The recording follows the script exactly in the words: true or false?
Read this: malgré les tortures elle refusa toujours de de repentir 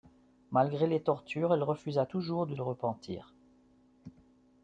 true